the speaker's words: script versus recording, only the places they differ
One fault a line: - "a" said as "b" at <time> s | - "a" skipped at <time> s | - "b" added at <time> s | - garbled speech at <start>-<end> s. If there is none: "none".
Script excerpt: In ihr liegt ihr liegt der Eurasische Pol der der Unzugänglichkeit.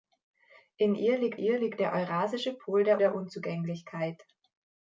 none